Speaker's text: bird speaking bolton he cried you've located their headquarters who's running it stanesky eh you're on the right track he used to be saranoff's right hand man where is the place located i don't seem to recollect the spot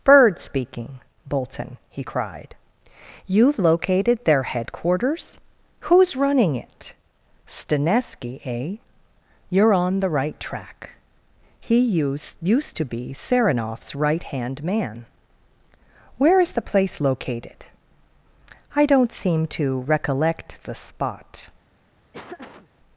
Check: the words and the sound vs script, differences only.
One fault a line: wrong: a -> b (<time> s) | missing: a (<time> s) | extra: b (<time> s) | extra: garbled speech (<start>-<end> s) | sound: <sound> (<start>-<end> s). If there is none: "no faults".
extra: used (12.4 s)
sound: laugh (22.1-22.7 s)